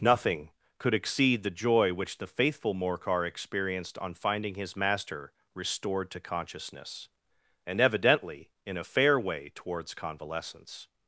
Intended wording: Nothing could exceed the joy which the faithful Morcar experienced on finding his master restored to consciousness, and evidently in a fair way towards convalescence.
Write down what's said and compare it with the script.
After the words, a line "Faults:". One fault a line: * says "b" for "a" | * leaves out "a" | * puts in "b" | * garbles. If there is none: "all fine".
Nothing could exceed the joy which the faithful Morcar experienced on finding his master restored to consciousness, and evidently in a fair way towards convalescence.
Faults:
all fine